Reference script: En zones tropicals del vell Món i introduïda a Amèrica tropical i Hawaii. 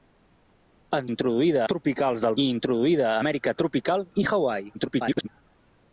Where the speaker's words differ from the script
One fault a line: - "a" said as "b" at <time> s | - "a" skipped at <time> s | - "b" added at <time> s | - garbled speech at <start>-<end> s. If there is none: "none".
- "zones" said as "introduïda" at 1.1 s
- "vell Món" skipped at 2.4 s
- garbled speech at 4.7-5.3 s